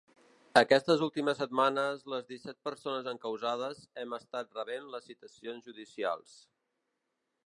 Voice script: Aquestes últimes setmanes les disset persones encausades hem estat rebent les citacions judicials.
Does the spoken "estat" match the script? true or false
true